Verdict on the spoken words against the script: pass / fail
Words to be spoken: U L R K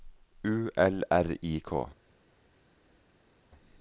fail